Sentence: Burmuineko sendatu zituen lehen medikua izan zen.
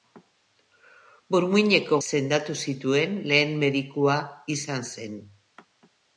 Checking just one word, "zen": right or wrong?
right